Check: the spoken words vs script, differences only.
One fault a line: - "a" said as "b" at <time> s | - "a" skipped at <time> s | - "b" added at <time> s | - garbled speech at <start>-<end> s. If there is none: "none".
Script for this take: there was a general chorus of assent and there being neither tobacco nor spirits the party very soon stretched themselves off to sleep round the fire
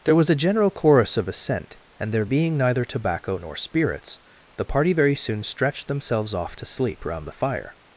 none